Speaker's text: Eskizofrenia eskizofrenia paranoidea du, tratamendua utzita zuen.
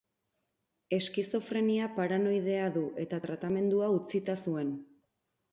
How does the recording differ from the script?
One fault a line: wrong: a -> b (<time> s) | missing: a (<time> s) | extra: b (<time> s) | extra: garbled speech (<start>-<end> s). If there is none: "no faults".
missing: eskizofrenia (1.9 s)
extra: eta (3.0 s)